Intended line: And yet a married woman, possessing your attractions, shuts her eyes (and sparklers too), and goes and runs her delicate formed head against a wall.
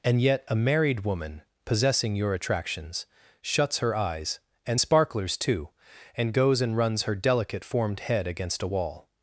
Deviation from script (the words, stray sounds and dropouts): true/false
false